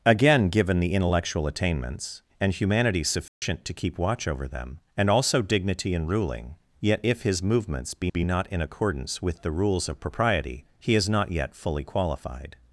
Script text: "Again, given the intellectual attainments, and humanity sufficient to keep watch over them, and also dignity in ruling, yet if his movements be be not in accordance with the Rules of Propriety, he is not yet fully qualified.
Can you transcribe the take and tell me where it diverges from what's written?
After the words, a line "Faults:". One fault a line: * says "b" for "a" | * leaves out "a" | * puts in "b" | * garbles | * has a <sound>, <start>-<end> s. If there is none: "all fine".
"Again, given the intellectual attainments, and humanity sufficient to keep watch over them, and also dignity in ruling, yet if his movements be be not in accordance with the Rules of Propriety, he is not yet fully qualified.
Faults:
* has a dropout, 3.3-3.4 s